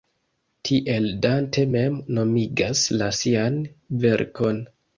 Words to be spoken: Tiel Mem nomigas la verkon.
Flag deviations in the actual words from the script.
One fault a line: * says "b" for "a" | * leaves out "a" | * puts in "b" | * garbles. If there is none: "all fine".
* puts in "Dante"
* puts in "sian"